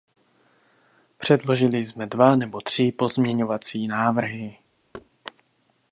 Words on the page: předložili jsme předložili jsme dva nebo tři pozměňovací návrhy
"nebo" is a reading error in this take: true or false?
false